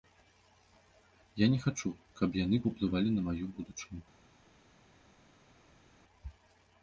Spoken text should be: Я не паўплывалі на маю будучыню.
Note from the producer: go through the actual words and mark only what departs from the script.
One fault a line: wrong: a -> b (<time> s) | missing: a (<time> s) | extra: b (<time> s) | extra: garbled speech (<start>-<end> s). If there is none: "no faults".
extra: хачу каб яны (1.6 s)